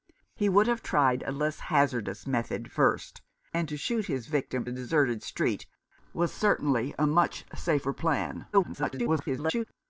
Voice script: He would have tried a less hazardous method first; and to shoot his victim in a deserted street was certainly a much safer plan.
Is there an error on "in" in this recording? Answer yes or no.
yes